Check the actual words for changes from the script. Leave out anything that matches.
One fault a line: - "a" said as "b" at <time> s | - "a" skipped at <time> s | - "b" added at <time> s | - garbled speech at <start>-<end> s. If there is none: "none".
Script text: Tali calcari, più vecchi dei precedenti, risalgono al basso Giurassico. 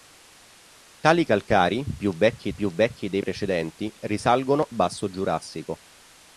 - "più vecchi" added at 2.5 s
- "al" skipped at 4.7 s